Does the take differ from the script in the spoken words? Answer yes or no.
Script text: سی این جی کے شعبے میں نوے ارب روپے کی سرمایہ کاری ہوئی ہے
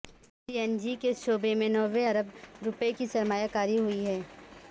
no